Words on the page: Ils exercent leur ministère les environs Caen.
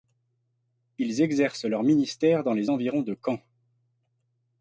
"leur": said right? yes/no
yes